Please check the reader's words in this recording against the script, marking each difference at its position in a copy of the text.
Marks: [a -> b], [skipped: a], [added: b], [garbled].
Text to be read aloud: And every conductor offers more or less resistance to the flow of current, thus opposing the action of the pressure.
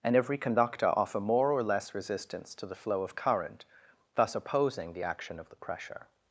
And every conductor [offers -> offer] more or less resistance to the flow of current, thus opposing the action of the pressure.